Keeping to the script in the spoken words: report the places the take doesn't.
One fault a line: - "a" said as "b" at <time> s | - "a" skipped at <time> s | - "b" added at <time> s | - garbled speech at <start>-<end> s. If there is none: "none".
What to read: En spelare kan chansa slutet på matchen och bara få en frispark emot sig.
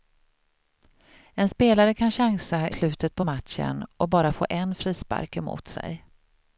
none